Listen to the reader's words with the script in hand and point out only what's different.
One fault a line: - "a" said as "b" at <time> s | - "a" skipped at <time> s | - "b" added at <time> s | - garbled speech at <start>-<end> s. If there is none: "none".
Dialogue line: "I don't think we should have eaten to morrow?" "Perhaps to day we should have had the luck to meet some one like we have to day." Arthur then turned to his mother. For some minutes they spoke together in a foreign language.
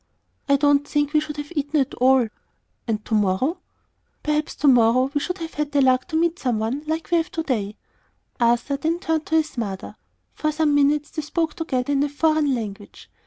- "at all And" added at 1.8 s
- "day" said as "morrow" at 4.7 s